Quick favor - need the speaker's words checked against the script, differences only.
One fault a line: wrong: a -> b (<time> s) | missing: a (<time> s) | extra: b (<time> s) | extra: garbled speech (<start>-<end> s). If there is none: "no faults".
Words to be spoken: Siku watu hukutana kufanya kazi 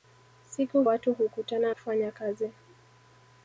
no faults